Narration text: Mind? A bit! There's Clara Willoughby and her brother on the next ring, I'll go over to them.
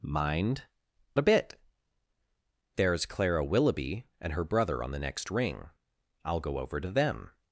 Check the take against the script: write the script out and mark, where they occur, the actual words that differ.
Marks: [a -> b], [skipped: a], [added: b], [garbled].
Mind? A bit! There's Clara Willoughby and her brother on the next ring, I'll go over to them.